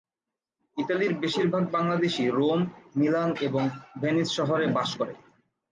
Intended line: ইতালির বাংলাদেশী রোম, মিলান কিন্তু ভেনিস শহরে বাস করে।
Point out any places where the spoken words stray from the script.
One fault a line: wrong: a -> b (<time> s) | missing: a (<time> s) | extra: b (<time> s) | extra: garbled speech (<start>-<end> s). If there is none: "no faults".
extra: বেশিরভাগ (1.2 s)
wrong: কিন্তু -> এবং (3.4 s)